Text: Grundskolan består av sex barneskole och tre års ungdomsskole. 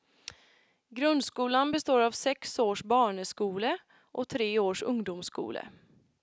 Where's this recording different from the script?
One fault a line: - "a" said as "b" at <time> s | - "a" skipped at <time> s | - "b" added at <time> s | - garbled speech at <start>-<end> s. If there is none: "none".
- "års" added at 2.6 s